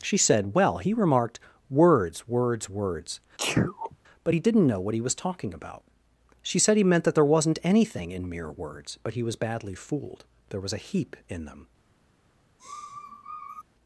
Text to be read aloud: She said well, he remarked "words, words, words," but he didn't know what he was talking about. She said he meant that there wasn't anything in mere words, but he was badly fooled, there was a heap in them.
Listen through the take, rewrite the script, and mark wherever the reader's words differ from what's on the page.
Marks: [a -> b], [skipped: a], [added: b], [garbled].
She said well, he remarked "words, words, words," but he didn't know what he was talking about. She said he meant that there wasn't anything in mere words, but he was badly fooled, there was a heap in them.